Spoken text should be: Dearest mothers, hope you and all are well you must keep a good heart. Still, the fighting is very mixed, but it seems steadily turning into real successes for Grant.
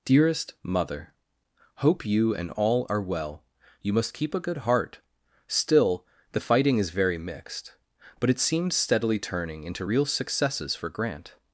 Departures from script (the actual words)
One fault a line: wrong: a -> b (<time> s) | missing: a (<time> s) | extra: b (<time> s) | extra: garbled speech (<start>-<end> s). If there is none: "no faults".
wrong: mothers -> mother (0.6 s)